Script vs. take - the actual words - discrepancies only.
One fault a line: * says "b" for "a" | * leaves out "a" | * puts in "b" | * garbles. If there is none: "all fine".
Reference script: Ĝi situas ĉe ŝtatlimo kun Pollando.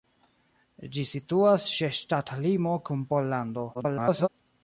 * garbles